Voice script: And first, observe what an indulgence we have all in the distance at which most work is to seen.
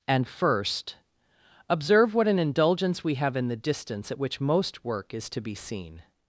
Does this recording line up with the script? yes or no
no